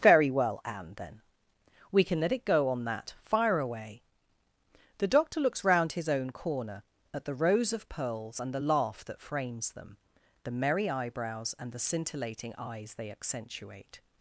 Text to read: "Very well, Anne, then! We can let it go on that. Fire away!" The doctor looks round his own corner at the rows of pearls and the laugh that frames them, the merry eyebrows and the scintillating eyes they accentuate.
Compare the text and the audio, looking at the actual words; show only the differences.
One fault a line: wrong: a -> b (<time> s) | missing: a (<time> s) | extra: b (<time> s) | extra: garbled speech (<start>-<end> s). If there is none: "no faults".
no faults